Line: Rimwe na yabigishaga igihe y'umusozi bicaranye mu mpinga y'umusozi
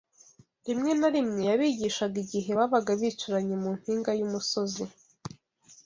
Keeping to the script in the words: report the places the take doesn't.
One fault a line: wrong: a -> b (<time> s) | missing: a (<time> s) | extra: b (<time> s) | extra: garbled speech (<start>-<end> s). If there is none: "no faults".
extra: rimwe (1.1 s)
wrong: y'umusozi -> babaga (2.6 s)